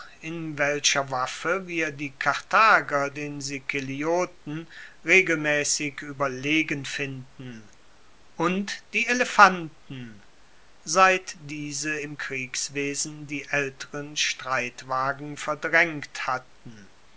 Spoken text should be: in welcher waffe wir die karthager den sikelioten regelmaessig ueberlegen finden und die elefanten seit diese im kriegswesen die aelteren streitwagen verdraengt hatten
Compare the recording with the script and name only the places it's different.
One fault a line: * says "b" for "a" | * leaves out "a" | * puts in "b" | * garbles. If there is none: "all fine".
all fine